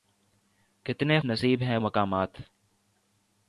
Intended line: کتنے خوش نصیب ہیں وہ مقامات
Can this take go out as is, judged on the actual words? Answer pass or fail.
fail